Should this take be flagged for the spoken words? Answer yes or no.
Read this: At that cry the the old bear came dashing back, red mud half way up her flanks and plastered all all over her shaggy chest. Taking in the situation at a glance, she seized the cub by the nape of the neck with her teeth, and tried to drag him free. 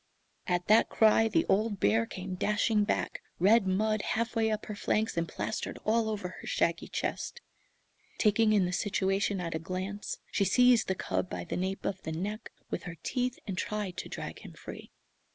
yes